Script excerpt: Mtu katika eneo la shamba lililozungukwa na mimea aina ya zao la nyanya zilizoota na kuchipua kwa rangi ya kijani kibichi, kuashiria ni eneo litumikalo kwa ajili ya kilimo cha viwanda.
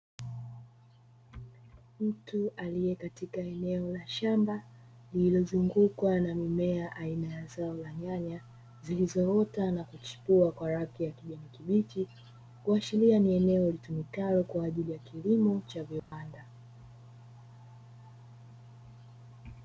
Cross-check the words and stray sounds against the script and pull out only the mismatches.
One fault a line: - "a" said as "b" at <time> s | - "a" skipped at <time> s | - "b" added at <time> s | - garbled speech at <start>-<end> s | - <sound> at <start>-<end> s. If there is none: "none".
- "aliye" added at 2.6 s
- dropout at 16.0-16.1 s